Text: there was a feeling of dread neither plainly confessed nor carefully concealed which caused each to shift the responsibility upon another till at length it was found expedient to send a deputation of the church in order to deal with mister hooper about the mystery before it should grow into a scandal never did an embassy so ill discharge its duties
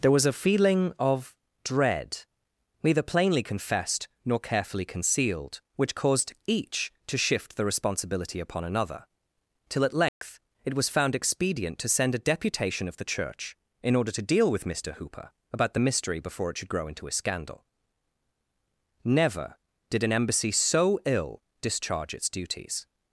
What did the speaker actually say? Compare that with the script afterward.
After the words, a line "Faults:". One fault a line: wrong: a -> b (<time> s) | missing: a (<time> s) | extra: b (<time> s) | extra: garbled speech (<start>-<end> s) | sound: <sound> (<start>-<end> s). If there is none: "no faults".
there was a feeling of dread neither plainly confessed nor carefully concealed which caused each to shift the responsibility upon another till at length it was found expedient to send a deputation of the church in order to deal with mister hooper about the mystery before it should grow into a scandal never did an embassy so ill discharge its duties
Faults:
sound: dropout (10.1-10.2 s)